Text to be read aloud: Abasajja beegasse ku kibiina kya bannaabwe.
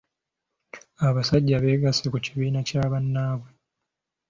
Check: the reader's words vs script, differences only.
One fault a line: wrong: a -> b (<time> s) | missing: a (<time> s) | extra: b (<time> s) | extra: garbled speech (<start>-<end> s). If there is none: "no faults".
no faults